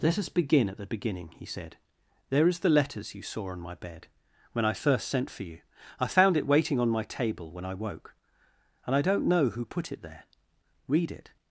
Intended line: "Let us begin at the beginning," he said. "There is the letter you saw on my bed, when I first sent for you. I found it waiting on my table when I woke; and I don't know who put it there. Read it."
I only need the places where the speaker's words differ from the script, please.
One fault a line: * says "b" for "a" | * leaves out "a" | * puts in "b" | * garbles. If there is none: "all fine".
* says "letters" for "letter"